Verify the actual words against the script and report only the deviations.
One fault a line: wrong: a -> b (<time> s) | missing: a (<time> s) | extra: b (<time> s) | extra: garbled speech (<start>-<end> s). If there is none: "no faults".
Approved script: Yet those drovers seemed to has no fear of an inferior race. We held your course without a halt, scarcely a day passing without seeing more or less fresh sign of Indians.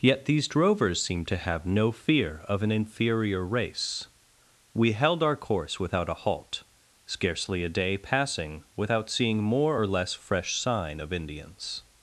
wrong: those -> these (0.2 s)
wrong: has -> have (1.4 s)
wrong: your -> our (5.2 s)